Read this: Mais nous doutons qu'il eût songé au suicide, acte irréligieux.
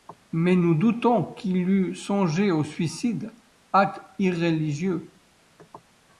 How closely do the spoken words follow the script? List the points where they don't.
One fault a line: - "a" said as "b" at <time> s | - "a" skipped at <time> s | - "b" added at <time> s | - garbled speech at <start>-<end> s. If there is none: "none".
none